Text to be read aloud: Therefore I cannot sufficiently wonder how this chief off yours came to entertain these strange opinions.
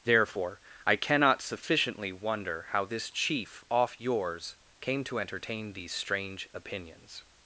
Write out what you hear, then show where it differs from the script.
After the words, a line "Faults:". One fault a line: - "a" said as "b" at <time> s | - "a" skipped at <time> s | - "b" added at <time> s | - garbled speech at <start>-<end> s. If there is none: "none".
Therefore I cannot sufficiently wonder how this chief off yours came to entertain these strange opinions.
Faults:
none